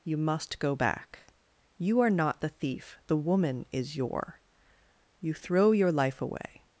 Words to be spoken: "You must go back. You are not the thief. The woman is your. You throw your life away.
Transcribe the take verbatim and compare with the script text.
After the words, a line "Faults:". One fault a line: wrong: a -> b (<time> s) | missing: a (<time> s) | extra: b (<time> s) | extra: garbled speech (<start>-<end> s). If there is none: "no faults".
"You must go back. You are not the thief. The woman is your. You throw your life away.
Faults:
no faults